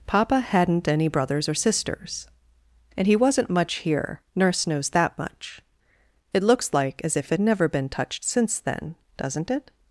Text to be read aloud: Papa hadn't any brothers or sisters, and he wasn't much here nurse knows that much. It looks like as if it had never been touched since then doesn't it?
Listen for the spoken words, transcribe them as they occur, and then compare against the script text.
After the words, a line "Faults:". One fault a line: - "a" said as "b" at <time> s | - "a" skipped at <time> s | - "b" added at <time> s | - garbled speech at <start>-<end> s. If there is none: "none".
Papa hadn't any brothers or sisters, and he wasn't much here nurse knows that much. It looks like as if it never been touched since then doesn't it?
Faults:
- "had" skipped at 7.4 s